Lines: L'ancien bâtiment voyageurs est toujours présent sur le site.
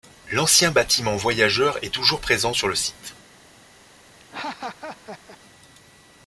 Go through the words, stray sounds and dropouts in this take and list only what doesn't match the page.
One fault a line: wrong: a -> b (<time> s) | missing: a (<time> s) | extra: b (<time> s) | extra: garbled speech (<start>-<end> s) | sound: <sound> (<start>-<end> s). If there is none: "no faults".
sound: laugh (4.2-5.4 s)